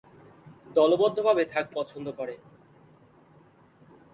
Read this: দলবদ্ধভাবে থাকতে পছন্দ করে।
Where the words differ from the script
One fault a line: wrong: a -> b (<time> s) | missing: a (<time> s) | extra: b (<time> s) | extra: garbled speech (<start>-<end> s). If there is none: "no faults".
no faults